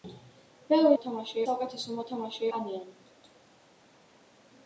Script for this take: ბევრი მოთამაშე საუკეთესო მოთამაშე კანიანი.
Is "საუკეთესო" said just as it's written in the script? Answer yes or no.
yes